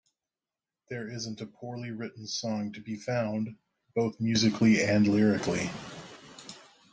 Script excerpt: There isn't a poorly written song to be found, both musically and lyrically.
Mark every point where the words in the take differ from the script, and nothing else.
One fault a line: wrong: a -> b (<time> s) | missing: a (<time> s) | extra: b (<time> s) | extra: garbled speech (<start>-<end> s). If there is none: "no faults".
no faults